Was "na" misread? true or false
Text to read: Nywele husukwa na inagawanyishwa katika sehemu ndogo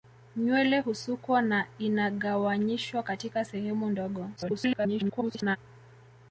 false